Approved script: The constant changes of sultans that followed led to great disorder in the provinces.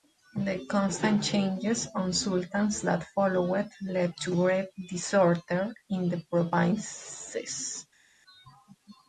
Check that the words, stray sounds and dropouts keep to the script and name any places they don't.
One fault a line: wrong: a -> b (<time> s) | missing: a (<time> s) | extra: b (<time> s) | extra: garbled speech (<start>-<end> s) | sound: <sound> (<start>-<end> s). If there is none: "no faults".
no faults